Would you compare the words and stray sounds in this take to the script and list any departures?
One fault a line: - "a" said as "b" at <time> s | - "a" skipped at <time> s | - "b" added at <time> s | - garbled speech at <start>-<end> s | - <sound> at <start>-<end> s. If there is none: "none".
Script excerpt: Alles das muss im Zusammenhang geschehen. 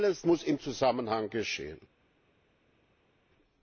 - "das" skipped at 0.2 s